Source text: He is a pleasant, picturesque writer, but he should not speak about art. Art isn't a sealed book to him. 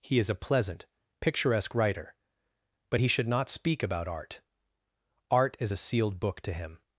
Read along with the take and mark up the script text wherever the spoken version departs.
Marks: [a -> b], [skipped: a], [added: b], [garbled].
He is a pleasant, picturesque writer, but he should not speak about art. Art [isn't -> is] a sealed book to him.